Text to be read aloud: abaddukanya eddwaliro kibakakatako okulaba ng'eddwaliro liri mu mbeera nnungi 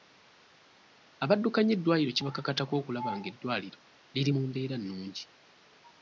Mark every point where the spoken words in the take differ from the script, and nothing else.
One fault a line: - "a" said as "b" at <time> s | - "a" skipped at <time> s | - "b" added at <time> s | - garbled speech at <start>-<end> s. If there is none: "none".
none